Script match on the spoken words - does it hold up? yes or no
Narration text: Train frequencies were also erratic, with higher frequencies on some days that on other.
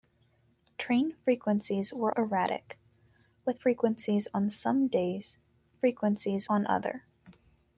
no